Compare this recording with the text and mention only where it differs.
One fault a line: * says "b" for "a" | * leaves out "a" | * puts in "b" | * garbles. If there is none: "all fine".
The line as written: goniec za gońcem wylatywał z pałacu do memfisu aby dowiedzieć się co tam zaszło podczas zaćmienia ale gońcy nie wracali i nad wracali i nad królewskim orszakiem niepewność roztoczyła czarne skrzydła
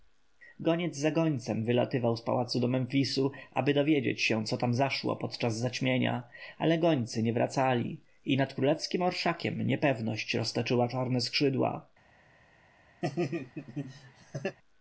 * leaves out "wracali i nad"